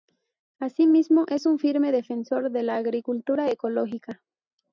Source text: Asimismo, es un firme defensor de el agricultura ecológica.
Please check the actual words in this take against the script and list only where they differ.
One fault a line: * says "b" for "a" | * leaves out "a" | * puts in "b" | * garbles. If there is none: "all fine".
* says "la" for "el"